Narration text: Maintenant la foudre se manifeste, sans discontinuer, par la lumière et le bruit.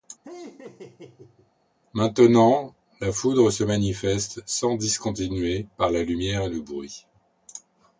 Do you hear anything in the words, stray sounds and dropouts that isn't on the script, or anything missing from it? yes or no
yes